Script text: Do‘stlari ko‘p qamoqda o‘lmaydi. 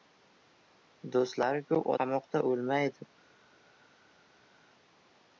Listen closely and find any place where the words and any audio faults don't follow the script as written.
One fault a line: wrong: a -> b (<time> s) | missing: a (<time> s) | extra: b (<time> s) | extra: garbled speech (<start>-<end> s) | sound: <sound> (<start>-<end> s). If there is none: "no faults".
no faults